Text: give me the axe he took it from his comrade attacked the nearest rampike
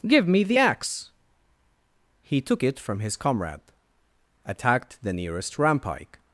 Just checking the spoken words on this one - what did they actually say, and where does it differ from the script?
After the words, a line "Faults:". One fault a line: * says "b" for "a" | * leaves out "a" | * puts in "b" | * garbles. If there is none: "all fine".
give me the axe he took it from his comrade attacked the nearest rampike
Faults:
all fine